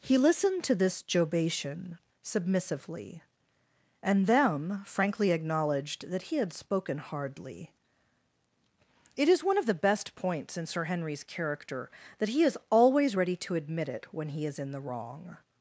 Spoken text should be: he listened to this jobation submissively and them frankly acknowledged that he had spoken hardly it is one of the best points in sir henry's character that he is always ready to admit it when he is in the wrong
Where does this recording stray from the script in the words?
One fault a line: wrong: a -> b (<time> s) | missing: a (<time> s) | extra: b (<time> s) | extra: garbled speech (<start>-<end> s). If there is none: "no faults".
no faults